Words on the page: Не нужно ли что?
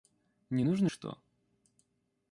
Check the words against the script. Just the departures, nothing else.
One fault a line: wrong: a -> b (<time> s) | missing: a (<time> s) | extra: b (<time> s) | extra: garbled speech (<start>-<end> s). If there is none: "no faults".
missing: ли (0.9 s)